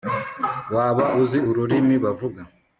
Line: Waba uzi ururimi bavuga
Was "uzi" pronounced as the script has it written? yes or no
yes